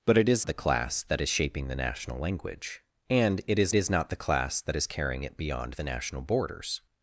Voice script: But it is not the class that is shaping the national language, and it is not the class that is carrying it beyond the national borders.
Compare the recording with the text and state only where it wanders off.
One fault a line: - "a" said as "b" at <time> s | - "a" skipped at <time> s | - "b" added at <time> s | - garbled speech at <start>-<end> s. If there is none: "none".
- "not" skipped at 0.5 s
- "is" added at 3.7 s